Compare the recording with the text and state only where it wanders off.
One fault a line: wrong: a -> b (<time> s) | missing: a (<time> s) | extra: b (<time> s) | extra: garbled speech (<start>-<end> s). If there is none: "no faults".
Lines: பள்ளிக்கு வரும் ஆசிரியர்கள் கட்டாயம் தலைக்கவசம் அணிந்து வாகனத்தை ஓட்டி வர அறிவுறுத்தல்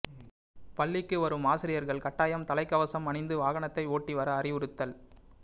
no faults